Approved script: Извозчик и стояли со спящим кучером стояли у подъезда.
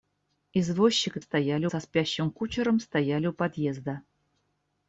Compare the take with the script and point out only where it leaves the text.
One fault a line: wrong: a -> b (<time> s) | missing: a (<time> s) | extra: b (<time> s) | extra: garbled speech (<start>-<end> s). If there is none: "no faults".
no faults